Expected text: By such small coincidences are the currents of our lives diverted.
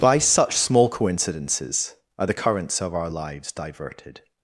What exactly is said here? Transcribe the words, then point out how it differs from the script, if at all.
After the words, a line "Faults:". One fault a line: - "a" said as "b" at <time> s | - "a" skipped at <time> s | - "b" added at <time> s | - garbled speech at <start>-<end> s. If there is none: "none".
By such small coincidences are the currents of our lives diverted.
Faults:
none